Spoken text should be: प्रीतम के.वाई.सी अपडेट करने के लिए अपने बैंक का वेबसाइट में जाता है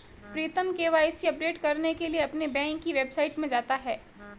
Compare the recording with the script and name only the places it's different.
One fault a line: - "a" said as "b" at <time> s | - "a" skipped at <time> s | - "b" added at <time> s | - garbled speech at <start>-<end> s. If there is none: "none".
- "का" said as "की" at 2.8 s